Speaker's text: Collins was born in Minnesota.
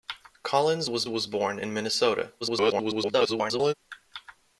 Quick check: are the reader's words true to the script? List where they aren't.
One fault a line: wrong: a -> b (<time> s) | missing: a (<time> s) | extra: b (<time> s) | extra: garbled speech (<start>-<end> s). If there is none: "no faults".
extra: was (1.1 s)
extra: garbled speech (2.4-3.7 s)